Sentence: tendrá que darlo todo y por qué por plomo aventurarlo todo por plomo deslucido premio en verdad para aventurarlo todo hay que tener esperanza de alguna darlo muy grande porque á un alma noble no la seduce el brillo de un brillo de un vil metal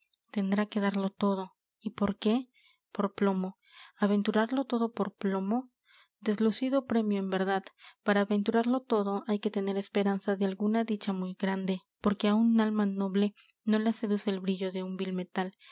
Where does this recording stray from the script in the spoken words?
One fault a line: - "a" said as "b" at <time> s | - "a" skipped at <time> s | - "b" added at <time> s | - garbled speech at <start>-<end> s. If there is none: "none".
- "darlo" said as "dicha" at 10.8 s
- "brillo de un" skipped at 15.0 s